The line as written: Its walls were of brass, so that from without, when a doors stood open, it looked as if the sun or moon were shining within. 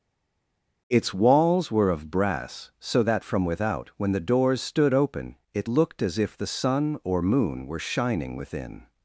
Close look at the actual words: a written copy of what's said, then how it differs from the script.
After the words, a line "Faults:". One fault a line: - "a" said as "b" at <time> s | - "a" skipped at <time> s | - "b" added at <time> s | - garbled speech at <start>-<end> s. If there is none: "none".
Its walls were of brass, so that from without, when the doors stood open, it looked as if the sun or moon were shining within.
Faults:
- "a" said as "the" at 4.1 s